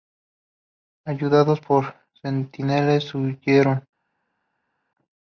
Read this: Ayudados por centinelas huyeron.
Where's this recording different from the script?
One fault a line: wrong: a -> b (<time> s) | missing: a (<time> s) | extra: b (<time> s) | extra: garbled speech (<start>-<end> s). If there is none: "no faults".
no faults